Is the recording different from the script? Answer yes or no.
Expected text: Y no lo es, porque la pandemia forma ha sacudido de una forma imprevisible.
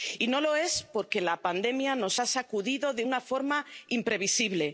yes